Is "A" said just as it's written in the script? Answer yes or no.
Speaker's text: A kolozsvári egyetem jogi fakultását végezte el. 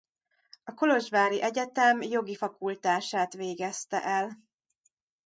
yes